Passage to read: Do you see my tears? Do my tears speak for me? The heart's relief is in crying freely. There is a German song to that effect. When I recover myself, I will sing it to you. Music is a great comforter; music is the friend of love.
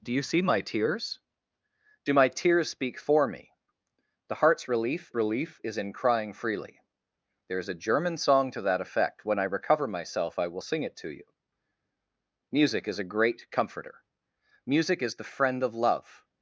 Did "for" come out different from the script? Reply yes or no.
no